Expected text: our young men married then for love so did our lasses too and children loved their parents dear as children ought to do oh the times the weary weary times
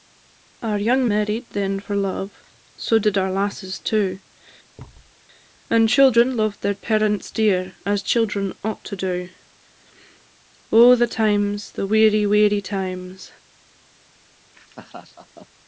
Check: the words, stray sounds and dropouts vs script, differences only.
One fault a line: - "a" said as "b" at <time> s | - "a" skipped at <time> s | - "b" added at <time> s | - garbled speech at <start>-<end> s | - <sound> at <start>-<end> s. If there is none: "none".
- "men" skipped at 1.1 s
- thud at 4.8-5.1 s
- laugh at 14.5-15.5 s